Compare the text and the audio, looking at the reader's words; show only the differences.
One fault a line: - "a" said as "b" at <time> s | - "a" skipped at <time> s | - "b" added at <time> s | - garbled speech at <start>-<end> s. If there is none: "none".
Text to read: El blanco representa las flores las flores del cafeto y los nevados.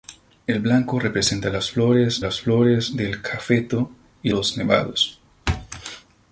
none